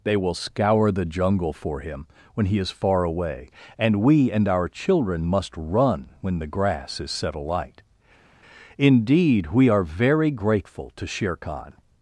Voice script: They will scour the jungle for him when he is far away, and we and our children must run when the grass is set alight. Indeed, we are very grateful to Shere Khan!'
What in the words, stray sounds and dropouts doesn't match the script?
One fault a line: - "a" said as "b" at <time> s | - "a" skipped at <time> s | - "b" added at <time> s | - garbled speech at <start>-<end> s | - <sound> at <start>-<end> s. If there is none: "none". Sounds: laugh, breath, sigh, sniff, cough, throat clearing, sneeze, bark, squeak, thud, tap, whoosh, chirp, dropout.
none